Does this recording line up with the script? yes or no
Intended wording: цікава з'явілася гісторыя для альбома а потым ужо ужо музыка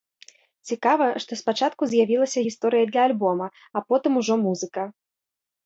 no